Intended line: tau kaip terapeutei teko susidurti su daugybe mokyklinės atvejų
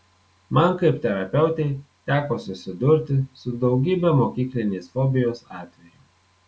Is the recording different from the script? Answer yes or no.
yes